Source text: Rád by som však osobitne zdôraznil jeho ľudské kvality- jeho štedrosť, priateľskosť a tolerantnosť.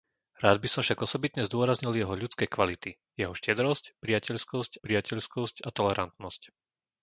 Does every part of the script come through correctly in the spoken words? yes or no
no